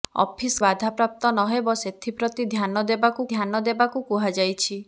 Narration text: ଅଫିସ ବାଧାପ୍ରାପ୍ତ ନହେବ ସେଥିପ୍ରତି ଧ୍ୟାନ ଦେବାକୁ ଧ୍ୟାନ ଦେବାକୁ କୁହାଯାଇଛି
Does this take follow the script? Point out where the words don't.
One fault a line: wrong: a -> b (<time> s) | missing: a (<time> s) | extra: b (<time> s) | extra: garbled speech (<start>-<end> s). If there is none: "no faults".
no faults